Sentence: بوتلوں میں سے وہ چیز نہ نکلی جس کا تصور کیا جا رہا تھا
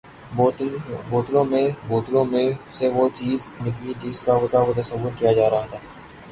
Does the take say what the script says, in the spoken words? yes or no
no